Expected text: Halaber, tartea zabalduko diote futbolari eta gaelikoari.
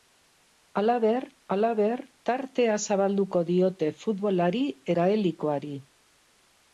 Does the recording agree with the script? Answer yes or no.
no